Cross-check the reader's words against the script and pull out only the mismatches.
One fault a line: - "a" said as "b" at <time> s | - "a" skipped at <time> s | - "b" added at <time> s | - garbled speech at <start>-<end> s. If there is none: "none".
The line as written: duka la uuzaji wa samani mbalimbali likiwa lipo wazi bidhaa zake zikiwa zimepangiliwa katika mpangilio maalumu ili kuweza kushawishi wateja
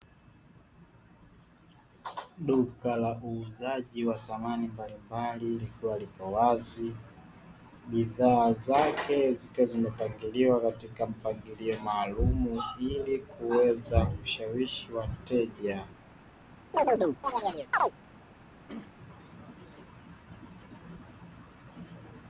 none